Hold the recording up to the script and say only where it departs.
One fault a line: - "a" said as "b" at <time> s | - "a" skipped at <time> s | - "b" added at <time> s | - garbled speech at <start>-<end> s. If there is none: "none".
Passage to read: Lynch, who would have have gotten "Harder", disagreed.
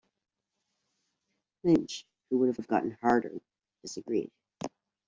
none